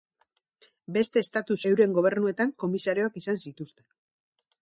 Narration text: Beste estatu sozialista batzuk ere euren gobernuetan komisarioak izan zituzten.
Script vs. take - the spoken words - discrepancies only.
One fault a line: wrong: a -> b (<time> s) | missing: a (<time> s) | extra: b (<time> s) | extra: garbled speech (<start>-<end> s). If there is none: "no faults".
missing: sozialista batzuk ere (1.6 s)